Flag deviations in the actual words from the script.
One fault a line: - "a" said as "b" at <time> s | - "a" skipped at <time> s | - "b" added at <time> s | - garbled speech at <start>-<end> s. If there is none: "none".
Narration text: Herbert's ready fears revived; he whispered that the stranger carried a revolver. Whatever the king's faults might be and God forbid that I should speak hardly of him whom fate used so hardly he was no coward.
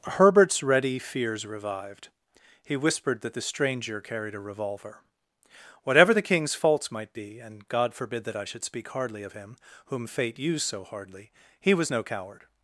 none